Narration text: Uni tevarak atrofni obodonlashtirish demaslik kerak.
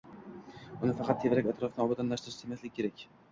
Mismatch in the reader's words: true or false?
true